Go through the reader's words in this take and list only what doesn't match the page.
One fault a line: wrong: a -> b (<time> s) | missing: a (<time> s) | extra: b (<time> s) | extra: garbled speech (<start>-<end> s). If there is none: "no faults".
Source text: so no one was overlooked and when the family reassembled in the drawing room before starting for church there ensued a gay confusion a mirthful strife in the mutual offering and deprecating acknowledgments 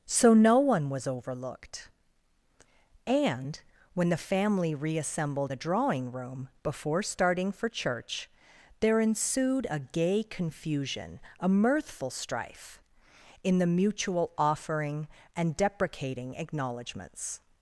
missing: in (5.5 s)